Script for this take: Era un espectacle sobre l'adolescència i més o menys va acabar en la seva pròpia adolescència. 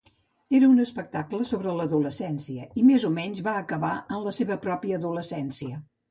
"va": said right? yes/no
yes